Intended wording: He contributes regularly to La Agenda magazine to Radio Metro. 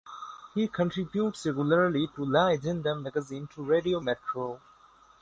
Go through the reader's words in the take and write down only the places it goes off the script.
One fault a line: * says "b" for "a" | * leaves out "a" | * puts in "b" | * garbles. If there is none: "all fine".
all fine